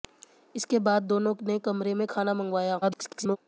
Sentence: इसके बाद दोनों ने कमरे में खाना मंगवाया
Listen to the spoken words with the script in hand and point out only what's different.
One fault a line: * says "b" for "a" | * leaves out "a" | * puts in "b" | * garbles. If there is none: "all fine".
* garbles